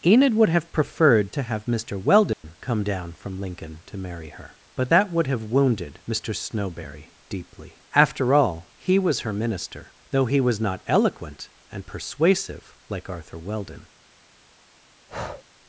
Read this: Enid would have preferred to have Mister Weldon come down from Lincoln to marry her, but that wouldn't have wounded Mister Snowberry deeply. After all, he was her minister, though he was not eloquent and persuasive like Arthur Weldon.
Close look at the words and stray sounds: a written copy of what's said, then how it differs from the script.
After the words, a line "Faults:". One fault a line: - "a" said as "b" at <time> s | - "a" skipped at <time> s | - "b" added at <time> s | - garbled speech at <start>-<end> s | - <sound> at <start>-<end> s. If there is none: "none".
Enid would have preferred to have Mister Weldon come down from Lincoln to marry her, but that would have wounded Mister Snowberry deeply. After all, he was her minister, though he was not eloquent and persuasive like Arthur Weldon.
Faults:
- dropout at 2.3-2.4 s
- "wouldn't" said as "would" at 5.1 s
- breath at 15.1-15.4 s